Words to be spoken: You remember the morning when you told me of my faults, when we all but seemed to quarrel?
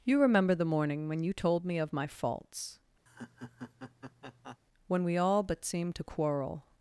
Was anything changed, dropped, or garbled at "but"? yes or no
no